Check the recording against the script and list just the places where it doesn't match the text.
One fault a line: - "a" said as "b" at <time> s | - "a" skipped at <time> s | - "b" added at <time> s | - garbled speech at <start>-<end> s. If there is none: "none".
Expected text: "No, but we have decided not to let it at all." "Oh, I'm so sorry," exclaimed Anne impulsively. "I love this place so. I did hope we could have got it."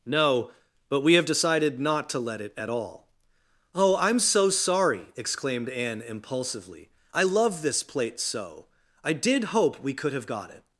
- "place" said as "plate" at 7.8 s